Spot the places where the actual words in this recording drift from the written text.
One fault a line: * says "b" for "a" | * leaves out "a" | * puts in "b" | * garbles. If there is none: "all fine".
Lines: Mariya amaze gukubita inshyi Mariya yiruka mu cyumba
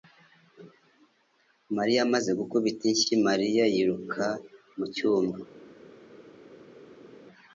all fine